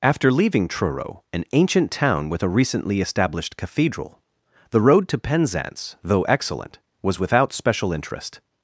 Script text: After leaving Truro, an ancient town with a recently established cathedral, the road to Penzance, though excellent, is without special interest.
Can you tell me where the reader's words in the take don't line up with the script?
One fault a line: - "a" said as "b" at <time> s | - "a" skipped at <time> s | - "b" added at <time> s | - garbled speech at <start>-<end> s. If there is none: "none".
- "is" said as "was" at 7.0 s